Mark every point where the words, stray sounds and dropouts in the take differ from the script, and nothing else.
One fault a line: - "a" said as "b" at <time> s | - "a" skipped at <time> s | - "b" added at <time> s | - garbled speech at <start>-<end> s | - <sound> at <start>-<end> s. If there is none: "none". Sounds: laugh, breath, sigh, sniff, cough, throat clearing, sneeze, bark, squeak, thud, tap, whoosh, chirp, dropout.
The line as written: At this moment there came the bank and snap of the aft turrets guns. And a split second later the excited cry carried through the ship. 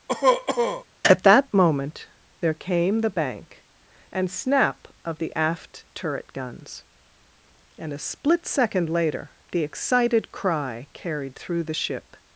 - cough at 0.1-0.8 s
- "this" said as "that" at 1.2 s
- "turrets" said as "turret" at 5.9 s